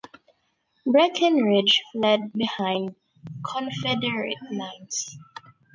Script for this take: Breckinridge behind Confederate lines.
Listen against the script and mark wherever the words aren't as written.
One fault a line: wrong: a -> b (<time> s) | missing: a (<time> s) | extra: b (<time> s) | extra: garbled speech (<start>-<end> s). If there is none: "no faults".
extra: fled (1.9 s)